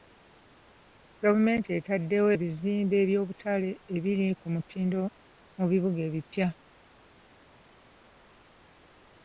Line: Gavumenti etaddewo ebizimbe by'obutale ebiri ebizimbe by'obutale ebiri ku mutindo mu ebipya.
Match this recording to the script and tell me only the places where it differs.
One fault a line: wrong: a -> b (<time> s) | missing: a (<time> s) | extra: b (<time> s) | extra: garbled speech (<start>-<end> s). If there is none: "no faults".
missing: ebizimbe by'obutale ebiri (4.3 s)
extra: bibuga (5.7 s)